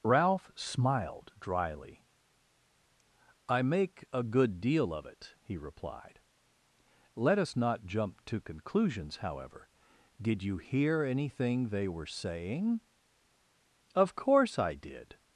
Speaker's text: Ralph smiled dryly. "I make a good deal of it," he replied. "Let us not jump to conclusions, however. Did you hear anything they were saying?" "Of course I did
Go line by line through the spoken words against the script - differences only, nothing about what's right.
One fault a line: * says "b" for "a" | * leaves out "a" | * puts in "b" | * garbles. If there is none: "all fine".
all fine